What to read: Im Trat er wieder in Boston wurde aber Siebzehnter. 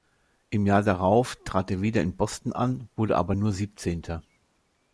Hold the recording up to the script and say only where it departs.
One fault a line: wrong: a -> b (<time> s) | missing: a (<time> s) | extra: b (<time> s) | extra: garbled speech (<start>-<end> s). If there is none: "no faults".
extra: Jahr darauf (0.7 s)
extra: an (2.5 s)
extra: nur (3.3 s)